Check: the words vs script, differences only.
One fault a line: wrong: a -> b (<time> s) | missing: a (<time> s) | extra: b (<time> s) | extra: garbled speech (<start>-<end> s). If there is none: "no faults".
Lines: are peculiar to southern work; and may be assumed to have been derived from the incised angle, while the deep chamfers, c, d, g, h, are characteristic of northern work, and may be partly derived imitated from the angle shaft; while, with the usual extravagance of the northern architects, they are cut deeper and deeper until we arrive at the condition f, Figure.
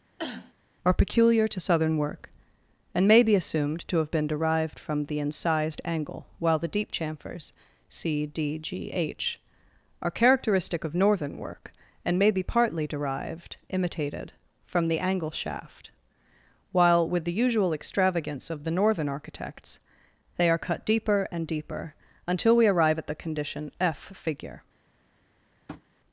no faults